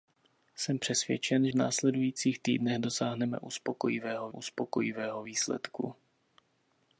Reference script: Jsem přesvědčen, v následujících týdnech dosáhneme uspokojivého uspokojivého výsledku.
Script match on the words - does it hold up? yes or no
yes